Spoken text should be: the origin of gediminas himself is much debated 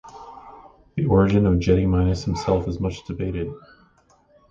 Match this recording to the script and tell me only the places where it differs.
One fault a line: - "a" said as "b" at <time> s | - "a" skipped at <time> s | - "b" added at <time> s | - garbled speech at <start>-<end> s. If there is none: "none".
none